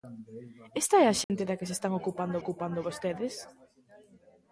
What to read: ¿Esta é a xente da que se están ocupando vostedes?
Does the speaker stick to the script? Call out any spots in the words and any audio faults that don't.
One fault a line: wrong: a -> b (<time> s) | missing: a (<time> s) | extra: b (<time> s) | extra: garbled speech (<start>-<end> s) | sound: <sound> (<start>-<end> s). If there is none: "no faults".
sound: dropout (1.2-1.3 s)
extra: ocupando (2.4 s)